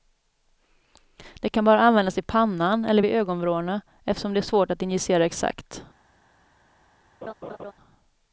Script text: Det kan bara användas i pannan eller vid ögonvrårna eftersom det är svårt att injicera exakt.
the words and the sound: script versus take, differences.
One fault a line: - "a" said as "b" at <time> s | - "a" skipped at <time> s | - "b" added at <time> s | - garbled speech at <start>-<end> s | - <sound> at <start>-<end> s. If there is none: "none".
- laugh at 7.2-7.7 s